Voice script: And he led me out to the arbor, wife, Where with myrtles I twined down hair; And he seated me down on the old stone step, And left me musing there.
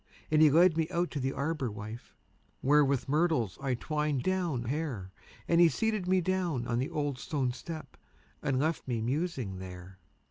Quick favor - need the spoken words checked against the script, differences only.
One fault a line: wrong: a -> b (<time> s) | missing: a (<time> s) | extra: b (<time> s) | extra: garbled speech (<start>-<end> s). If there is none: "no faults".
no faults